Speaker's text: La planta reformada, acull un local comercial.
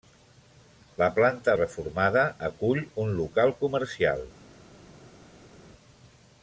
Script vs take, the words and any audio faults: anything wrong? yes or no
no